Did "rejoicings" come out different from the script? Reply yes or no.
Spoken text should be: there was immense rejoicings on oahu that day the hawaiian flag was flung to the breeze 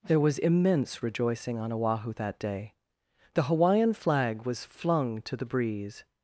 yes